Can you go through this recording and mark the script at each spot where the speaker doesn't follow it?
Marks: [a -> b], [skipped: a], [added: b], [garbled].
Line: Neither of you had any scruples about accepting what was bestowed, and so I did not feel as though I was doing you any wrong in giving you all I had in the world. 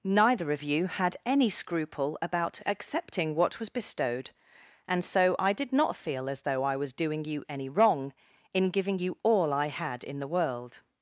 Neither of you had any [scruples -> scruple] about accepting what was bestowed, and so I did not feel as though I was doing you any wrong in giving you all I had in the world.